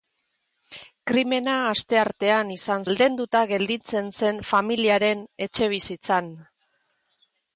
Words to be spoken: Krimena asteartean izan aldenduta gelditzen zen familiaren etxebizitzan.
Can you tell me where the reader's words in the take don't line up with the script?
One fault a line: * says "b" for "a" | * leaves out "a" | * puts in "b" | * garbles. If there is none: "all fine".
all fine